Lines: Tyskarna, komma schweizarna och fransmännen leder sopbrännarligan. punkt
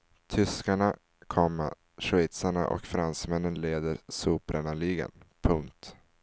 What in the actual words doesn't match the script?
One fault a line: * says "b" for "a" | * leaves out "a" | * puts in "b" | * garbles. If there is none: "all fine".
all fine